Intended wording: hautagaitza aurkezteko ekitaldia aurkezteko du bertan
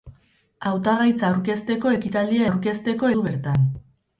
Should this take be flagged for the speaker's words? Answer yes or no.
no